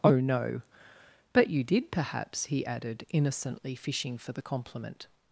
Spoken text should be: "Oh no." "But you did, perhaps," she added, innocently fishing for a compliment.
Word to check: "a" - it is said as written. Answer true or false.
false